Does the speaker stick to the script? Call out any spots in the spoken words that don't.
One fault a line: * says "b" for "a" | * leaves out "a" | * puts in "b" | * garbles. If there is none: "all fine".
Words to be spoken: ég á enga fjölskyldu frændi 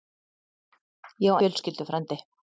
* leaves out "enga"